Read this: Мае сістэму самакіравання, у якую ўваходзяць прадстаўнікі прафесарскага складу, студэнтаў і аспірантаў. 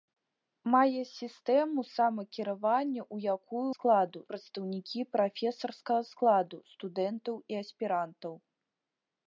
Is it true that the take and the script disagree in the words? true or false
true